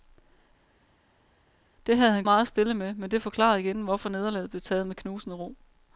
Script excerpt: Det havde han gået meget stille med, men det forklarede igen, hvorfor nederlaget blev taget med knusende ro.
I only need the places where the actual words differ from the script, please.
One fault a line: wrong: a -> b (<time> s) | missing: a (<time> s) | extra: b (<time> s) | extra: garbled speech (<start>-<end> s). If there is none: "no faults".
missing: gået (2.2 s)